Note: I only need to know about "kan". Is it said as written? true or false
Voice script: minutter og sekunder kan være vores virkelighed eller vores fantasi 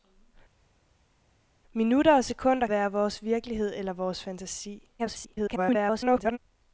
false